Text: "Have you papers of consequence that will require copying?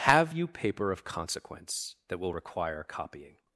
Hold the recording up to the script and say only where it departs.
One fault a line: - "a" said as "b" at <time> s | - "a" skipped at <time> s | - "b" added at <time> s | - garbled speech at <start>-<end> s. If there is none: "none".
- "papers" said as "paper" at 0.5 s